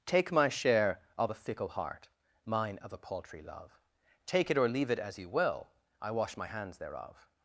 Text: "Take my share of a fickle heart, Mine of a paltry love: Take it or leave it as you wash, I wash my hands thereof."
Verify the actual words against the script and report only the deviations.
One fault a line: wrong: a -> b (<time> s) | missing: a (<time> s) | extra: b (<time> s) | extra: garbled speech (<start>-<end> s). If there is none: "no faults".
wrong: wash -> will (5.3 s)